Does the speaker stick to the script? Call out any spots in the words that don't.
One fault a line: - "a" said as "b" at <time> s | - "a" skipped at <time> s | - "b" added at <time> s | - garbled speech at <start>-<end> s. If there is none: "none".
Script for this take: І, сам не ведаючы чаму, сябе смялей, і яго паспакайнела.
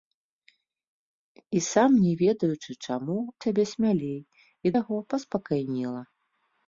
none